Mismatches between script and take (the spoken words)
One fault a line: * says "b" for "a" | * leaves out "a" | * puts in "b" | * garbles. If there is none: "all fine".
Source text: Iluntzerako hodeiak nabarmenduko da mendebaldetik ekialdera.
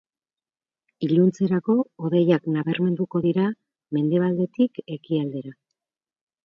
* says "dira" for "da"